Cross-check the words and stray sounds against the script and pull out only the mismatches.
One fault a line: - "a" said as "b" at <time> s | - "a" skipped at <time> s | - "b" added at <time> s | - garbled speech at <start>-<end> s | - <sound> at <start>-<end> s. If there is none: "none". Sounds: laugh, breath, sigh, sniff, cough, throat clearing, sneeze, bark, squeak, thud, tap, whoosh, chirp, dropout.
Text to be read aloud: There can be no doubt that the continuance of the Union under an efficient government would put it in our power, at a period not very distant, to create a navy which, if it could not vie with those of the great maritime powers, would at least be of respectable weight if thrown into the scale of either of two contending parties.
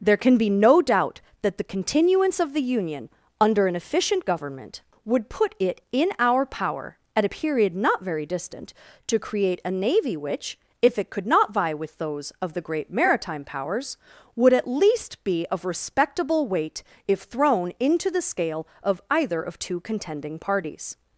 none